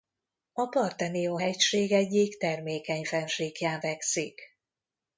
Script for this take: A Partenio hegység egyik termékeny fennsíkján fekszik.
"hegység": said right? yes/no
yes